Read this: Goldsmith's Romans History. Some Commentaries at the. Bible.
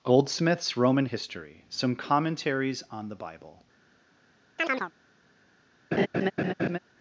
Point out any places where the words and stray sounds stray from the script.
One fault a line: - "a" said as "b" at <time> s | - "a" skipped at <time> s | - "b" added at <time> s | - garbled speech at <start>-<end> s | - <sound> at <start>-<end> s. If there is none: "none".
- "Romans" said as "Roman" at 0.8 s
- "at" said as "on" at 2.9 s
- chirp at 4.6-4.9 s
- laugh at 5.9-6.8 s